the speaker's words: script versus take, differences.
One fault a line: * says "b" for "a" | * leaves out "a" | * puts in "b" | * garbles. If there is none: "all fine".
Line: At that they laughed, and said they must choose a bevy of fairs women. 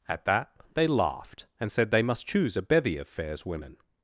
all fine